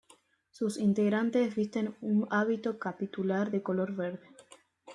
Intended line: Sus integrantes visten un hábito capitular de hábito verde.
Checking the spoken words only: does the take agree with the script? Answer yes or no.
no